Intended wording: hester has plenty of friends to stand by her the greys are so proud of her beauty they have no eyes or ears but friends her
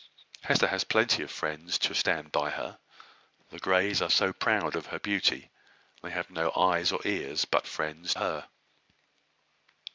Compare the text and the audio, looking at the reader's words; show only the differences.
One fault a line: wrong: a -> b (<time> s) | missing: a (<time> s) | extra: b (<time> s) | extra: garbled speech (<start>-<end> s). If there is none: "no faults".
no faults